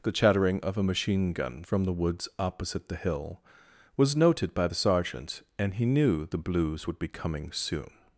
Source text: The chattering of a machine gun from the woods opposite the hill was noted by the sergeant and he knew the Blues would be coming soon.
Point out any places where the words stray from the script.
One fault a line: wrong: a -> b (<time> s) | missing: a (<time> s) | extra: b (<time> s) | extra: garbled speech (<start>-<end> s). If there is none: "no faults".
no faults